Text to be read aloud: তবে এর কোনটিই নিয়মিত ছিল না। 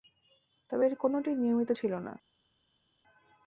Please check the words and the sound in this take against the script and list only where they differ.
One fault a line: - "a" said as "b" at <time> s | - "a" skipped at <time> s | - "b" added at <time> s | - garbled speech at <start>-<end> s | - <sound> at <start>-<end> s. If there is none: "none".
none